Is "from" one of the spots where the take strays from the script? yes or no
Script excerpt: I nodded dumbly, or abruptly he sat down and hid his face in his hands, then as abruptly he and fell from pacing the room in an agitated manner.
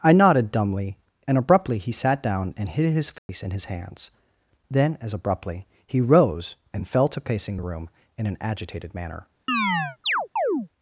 yes